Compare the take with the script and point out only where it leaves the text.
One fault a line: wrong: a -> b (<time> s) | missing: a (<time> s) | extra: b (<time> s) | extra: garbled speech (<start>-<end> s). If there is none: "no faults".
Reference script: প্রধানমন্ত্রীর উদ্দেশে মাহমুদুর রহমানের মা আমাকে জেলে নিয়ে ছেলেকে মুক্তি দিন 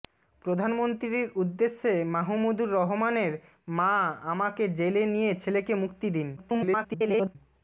extra: garbled speech (6.4-7.4 s)